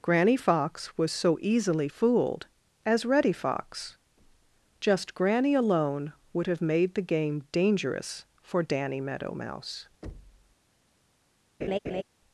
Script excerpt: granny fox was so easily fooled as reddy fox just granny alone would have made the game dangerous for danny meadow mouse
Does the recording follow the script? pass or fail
pass